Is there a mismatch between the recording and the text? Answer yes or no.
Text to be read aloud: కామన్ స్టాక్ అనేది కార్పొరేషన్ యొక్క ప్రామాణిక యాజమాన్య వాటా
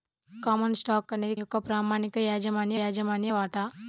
yes